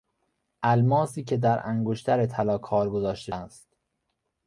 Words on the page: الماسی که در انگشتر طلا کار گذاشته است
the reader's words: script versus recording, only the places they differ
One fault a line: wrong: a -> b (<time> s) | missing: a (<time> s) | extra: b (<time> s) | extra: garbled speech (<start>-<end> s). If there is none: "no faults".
no faults